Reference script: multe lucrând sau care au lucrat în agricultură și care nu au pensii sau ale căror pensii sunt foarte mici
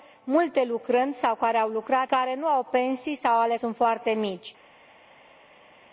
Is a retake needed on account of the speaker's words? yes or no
yes